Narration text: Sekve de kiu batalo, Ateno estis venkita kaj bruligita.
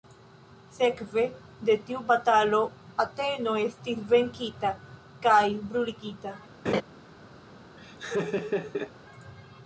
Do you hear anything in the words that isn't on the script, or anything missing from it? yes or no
yes